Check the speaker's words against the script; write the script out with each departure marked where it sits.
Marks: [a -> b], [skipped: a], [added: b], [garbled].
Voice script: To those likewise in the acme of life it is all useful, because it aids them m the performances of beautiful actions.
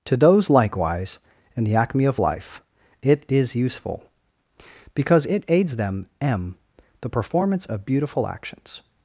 To those likewise in the acme of life it is [skipped: all] useful, because it aids them m the [performances -> performance] of beautiful actions.